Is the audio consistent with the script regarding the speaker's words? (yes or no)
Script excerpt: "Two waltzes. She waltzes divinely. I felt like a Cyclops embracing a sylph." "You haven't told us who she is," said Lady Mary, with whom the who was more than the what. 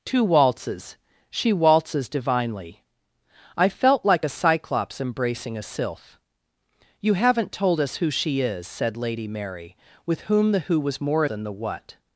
yes